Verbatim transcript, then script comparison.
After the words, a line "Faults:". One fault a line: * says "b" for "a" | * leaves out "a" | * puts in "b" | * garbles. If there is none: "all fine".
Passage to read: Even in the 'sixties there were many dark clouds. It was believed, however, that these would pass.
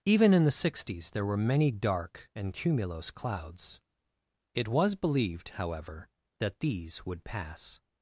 Even in the 'sixties there were many dark and cumulose clouds. It was believed, however, that these would pass.
Faults:
* puts in "and cumulose"